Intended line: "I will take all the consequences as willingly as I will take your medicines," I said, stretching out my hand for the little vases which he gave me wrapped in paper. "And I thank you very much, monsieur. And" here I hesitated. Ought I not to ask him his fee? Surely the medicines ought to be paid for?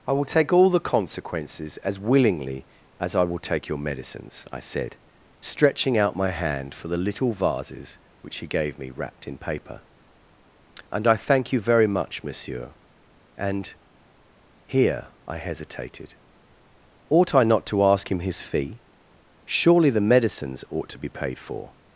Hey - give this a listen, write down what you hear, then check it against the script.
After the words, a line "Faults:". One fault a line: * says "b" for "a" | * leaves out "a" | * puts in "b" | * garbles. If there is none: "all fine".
"I will take all the consequences as willingly as I will take your medicines," I said, stretching out my hand for the little vases which he gave me wrapped in paper. "And I thank you very much, monsieur. And" here I hesitated. Ought I not to ask him his fee? Surely the medicines ought to be paid for?
Faults:
all fine